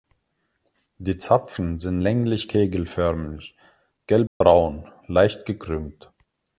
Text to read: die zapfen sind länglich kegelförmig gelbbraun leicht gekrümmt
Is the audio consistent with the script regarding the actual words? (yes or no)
yes